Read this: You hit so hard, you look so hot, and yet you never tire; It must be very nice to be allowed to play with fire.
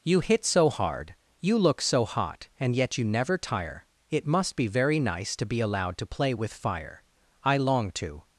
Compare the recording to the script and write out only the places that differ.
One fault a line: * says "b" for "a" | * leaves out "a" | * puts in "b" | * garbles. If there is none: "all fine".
* puts in "I long to"